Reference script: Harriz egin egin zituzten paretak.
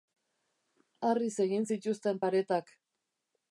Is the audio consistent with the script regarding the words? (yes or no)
no